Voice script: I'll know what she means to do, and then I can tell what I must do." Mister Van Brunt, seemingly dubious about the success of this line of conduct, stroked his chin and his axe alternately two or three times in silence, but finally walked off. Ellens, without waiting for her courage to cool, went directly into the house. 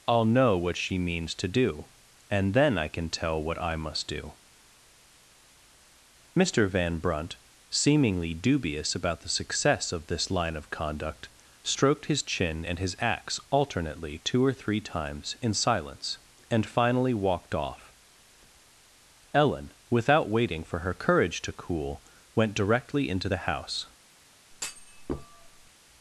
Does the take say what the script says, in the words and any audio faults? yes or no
no